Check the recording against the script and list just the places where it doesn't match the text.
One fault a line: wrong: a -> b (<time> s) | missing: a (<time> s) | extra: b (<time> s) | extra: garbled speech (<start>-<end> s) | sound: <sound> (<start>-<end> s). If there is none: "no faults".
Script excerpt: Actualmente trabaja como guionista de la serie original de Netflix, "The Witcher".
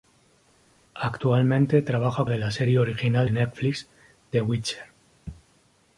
missing: como guionista (2.2 s)
missing: de (3.3 s)